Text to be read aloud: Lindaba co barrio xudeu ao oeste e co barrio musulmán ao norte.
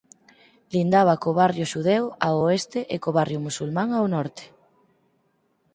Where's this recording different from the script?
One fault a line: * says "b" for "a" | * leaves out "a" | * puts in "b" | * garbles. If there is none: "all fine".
all fine